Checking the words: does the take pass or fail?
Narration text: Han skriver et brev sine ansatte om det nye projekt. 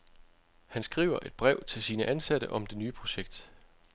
fail